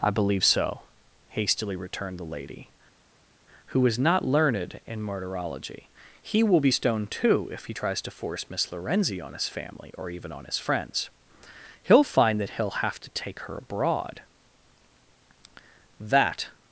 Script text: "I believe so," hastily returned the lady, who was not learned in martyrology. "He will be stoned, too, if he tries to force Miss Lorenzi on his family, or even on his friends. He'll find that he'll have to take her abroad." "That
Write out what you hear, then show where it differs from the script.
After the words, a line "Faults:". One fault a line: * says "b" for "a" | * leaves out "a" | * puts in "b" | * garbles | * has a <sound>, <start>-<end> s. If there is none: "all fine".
"I believe so," hastily returned the lady, who was not learned in martyrology. "He will be stoned, too, if he tries to force Miss Lorenzi on his family, or even on his friends. He'll find that he'll have to take her abroad." "That
Faults:
all fine